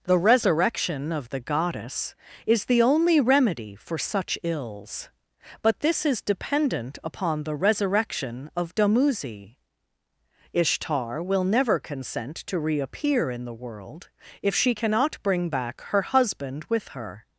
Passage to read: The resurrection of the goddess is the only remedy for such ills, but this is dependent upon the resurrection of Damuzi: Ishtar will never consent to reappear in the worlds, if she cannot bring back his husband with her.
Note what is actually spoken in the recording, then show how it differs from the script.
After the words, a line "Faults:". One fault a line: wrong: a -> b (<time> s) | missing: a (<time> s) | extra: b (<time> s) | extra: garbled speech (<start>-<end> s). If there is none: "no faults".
The resurrection of the goddess is the only remedy for such ills, but this is dependent upon the resurrection of Damuzi: Ishtar will never consent to reappear in the world, if she cannot bring back her husband with her.
Faults:
wrong: worlds -> world (13.5 s)
wrong: his -> her (15.9 s)